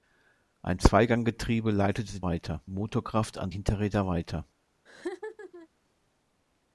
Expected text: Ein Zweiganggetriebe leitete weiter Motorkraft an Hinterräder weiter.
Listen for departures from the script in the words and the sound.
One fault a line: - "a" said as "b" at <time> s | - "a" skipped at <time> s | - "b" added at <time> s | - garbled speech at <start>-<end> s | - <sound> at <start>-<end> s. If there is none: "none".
- laugh at 4.9-5.7 s